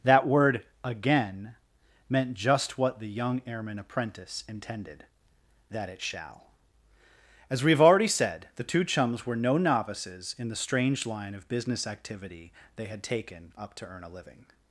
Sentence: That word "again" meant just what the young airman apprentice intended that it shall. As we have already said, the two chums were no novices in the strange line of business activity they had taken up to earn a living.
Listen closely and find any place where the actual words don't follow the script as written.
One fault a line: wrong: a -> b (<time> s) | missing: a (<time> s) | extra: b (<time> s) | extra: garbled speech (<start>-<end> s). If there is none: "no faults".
no faults